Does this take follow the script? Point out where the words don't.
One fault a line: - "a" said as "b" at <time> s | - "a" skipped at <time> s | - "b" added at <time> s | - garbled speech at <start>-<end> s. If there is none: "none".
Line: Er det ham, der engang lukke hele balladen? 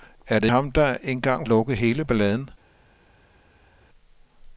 none